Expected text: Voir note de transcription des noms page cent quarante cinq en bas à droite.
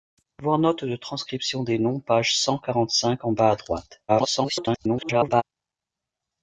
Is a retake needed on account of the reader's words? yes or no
yes